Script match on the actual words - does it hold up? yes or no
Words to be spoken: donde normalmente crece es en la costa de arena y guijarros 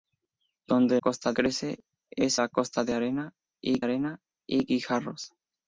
no